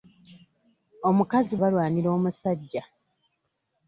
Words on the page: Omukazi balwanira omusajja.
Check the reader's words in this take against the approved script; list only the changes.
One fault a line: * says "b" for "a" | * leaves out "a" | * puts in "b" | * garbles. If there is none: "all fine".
all fine